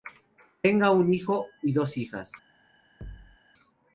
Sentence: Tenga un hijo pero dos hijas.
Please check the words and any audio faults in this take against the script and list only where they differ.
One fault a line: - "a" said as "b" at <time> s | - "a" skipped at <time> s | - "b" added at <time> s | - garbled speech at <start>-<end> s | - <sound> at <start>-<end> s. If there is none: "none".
- "pero" said as "y" at 1.6 s
- thud at 3.0-3.4 s